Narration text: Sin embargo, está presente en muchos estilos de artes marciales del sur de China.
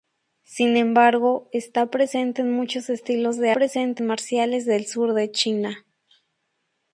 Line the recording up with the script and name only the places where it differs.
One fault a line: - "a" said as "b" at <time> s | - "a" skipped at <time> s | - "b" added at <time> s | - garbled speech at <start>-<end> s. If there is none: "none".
- "artes" said as "presente" at 3.5 s